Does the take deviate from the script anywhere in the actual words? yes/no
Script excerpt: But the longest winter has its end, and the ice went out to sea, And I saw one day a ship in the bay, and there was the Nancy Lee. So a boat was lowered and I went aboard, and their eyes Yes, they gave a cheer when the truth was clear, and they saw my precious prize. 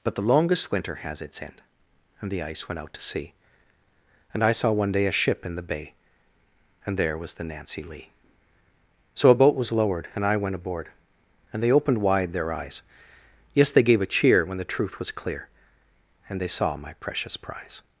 yes